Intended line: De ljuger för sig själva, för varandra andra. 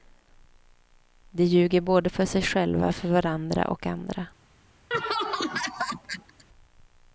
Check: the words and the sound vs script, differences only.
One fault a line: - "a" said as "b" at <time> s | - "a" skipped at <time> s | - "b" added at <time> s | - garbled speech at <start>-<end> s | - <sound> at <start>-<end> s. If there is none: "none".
- "både" added at 1.8 s
- "och" added at 3.7 s
- laugh at 4.9-6.4 s